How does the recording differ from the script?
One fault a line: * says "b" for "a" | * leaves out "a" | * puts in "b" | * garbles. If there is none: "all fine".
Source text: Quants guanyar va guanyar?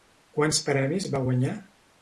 * says "premis" for "guanyar"